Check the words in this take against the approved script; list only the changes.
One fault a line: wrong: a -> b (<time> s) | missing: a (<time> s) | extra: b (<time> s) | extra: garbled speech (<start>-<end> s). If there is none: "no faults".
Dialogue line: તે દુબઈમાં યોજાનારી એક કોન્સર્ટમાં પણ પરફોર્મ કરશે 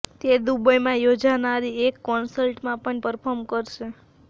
no faults